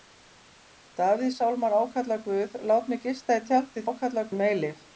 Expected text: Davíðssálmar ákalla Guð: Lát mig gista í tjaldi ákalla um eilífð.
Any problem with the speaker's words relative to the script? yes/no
no